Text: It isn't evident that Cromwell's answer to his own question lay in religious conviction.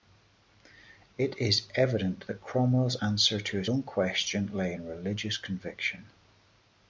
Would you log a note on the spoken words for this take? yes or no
yes